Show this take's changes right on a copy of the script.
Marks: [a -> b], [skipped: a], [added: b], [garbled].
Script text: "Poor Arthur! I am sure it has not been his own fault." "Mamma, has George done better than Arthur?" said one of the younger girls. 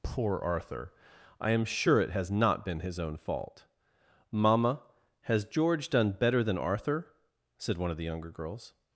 "Poor Arthur! I am sure it has not been his own fault." "Mamma, has George done better than Arthur?" said one of the younger girls.